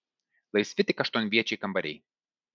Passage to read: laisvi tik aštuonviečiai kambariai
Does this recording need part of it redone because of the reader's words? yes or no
no